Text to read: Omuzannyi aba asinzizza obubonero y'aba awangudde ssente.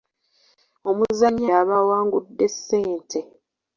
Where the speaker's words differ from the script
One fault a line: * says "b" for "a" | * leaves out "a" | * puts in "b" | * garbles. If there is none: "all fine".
* leaves out "aba asinzizza obubonero"